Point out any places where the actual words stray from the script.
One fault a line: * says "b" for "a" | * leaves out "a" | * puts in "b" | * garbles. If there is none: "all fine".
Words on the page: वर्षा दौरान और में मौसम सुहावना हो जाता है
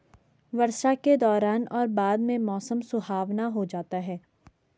* puts in "के"
* puts in "बाद"